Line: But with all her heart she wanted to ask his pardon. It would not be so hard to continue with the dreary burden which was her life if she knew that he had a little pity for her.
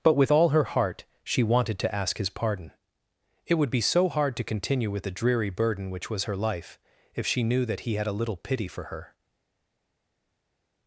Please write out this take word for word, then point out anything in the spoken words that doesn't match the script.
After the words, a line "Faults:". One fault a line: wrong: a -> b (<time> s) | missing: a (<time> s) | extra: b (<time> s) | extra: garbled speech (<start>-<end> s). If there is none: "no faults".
But with all her heart she wanted to ask his pardon. It would be so hard to continue with the dreary burden which was her life if she knew that he had a little pity for her.
Faults:
missing: not (3.7 s)